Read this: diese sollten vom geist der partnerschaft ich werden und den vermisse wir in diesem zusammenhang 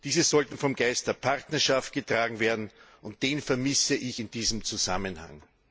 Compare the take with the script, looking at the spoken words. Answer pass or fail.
fail